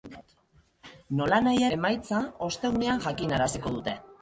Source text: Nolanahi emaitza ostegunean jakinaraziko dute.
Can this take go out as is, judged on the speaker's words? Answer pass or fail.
pass